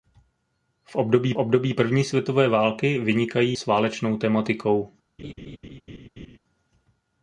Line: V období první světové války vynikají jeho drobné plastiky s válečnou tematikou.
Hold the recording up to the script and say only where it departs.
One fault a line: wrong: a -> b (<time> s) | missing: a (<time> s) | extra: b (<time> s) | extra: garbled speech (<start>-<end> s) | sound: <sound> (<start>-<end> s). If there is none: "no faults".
extra: období (1.4 s)
missing: jeho drobné plastiky (3.6 s)
sound: laugh (5.2-6.4 s)